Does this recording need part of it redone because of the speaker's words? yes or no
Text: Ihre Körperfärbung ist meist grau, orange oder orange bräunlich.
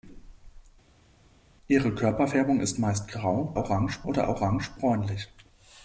no